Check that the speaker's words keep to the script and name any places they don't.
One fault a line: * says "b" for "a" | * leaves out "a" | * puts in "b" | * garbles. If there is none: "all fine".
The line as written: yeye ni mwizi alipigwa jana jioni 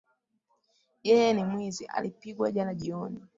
all fine